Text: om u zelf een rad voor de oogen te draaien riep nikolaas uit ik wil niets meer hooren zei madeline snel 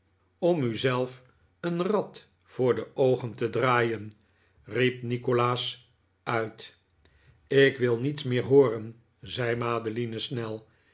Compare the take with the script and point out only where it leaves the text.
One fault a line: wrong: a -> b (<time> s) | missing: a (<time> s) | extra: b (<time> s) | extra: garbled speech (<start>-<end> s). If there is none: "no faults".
no faults